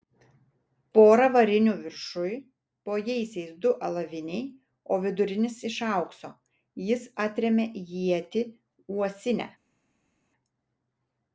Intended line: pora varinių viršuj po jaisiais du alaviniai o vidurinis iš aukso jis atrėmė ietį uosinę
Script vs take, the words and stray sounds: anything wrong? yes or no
no